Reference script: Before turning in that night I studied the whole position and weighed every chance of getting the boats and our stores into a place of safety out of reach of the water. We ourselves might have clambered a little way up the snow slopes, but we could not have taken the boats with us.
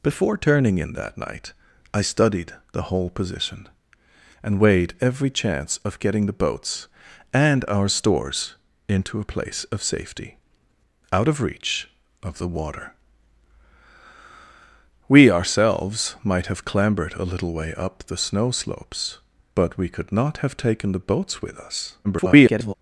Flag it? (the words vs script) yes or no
yes